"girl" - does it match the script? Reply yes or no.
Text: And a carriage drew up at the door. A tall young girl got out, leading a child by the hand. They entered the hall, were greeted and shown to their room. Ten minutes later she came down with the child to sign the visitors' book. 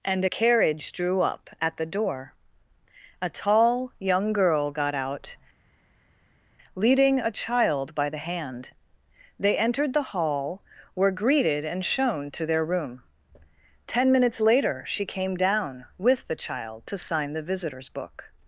yes